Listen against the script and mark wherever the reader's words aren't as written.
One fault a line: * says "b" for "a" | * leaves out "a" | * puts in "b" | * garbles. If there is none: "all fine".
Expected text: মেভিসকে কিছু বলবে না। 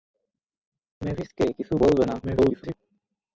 * garbles